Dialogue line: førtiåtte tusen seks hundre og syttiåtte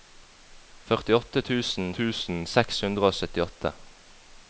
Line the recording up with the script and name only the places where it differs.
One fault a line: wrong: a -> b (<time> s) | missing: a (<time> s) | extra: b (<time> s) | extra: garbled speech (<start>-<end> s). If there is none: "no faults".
extra: tusen (2.0 s)